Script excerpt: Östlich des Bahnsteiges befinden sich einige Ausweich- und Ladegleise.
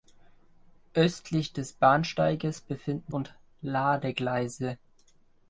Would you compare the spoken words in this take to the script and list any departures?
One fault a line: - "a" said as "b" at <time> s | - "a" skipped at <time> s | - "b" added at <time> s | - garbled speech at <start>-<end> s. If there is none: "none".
- "sich einige Ausweich" skipped at 3.1 s